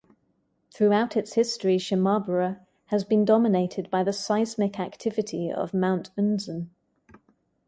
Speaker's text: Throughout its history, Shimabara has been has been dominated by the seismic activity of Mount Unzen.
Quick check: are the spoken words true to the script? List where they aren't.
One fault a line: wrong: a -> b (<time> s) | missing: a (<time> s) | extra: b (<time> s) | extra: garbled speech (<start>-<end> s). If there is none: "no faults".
missing: has been (3.2 s)